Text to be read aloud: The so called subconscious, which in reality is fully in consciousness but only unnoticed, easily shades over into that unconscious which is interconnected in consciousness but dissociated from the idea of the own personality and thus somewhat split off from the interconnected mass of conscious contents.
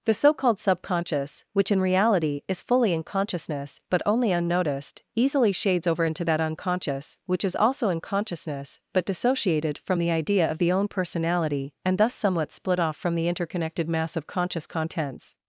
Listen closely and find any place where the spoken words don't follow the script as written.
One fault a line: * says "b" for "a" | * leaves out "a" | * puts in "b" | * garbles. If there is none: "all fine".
* says "also" for "interconnected"